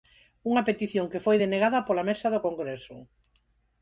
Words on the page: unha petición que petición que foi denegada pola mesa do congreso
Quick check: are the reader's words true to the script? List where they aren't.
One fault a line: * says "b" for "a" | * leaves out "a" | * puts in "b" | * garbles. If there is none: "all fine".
* leaves out "petición que"